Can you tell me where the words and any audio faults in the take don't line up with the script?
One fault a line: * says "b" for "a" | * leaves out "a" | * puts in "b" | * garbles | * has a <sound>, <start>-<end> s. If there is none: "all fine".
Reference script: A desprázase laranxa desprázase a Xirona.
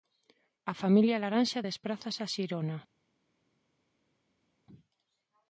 * says "familia" for "desprázase"